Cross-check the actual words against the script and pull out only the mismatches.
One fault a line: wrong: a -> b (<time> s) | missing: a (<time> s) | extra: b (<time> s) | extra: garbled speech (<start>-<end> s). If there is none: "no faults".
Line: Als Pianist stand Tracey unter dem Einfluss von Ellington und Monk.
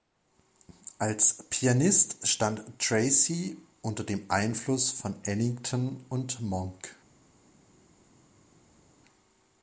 no faults